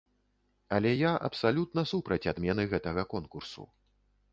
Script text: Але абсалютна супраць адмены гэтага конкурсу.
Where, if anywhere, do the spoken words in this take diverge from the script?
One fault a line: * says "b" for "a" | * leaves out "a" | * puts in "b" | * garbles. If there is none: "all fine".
* puts in "я"